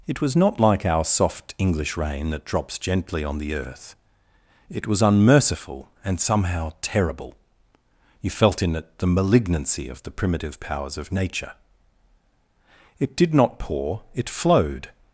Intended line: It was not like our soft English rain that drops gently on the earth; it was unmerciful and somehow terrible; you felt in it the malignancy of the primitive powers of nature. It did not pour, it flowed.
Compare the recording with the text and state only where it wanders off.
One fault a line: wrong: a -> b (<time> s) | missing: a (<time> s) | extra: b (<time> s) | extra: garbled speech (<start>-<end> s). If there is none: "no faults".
no faults